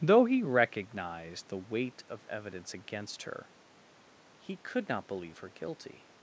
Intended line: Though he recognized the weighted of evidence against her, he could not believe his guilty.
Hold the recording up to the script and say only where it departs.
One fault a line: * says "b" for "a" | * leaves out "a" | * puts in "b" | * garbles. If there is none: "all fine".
* says "weight" for "weighted"
* says "her" for "his"